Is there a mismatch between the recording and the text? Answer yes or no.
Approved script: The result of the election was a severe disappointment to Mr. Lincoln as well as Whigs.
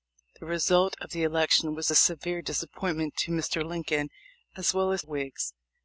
no